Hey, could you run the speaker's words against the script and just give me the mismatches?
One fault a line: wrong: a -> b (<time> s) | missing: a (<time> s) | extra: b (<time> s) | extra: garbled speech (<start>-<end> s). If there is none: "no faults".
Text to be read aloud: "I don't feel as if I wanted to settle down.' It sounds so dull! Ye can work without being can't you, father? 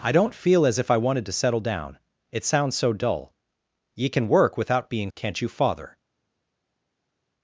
no faults